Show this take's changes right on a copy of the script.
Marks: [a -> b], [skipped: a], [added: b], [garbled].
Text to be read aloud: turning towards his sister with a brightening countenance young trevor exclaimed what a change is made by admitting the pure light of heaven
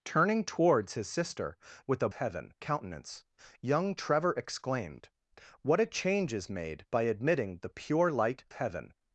turning towards his sister with a [brightening -> heaven] countenance young trevor exclaimed what a change is made by admitting the pure light [skipped: of] heaven